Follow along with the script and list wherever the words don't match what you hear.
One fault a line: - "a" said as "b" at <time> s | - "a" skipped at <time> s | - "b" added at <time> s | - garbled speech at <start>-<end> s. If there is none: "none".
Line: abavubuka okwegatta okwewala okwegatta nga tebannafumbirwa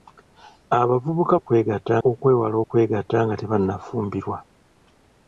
none